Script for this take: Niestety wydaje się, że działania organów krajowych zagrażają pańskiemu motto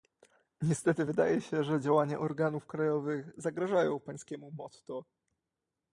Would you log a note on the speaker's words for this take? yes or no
no